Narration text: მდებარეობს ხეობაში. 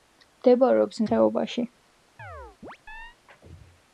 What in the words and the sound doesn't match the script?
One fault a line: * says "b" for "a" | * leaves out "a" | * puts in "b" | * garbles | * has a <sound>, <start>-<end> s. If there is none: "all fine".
* has a chirp, 2.2-3.2 s